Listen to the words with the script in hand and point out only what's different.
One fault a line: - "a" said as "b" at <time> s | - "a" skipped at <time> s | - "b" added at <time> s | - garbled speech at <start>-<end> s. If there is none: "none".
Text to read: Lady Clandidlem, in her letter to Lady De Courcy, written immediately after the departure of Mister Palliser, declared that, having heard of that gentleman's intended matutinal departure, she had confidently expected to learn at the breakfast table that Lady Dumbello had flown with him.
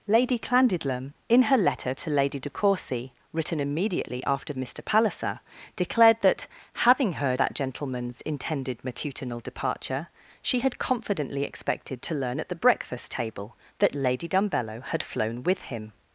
- "the departure of" skipped at 4.5 s
- "of" skipped at 7.4 s